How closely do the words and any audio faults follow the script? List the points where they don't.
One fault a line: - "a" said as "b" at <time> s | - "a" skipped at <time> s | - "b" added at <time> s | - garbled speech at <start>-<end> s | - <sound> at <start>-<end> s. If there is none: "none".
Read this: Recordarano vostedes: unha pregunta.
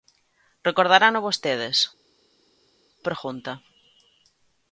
- "unha" skipped at 1.8 s